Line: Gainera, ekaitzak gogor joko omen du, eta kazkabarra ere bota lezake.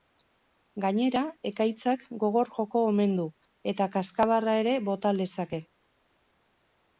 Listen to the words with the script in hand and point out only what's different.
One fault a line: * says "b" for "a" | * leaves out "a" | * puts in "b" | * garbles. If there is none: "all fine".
all fine